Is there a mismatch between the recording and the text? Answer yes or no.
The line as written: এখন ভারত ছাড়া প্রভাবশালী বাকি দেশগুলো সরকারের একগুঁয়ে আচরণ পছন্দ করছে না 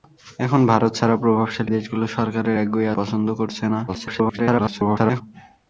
yes